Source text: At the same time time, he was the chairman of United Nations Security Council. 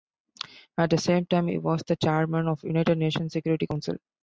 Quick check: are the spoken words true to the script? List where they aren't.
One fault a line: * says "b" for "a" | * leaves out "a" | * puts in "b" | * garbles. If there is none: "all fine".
* leaves out "time"